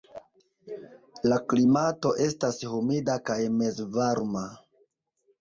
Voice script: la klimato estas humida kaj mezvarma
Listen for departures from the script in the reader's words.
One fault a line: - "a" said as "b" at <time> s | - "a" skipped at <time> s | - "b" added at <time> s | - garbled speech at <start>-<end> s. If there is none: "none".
none